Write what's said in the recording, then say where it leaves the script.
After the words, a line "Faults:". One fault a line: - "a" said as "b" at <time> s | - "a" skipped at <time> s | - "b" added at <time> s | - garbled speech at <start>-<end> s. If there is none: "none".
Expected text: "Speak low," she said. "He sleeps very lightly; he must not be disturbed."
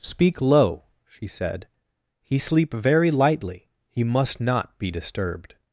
"Speak low," she said. "He sleep very lightly; he must not be disturbed."
Faults:
- "sleeps" said as "sleep" at 2.4 s